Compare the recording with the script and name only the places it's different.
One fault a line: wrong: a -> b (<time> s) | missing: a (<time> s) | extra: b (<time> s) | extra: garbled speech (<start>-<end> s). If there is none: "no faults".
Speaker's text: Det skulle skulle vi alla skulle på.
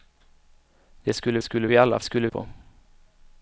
no faults